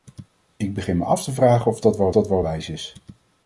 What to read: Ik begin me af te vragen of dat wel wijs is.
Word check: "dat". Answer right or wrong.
right